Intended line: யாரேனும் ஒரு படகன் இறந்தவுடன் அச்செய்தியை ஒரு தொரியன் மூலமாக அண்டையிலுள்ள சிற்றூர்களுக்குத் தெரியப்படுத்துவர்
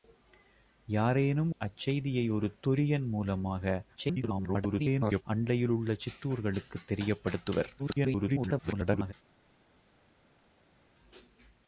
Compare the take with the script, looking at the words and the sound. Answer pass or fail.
fail